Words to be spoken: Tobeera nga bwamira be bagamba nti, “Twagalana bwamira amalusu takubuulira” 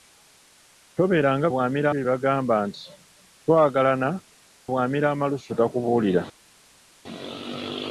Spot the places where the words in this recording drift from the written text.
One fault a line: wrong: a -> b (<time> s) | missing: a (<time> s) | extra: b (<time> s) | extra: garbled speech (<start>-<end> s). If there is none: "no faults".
no faults